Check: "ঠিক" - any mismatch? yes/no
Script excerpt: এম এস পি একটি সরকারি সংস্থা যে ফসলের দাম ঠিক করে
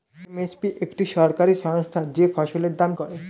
yes